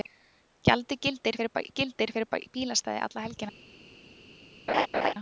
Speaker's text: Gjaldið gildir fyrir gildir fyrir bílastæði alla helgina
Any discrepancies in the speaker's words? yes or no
no